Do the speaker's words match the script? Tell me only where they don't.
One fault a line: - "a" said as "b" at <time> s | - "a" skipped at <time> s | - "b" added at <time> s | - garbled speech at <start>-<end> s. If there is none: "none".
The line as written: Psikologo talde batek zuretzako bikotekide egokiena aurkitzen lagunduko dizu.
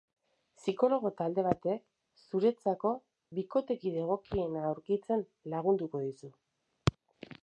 none